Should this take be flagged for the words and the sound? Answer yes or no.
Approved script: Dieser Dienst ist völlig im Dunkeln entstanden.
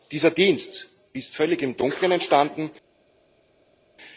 no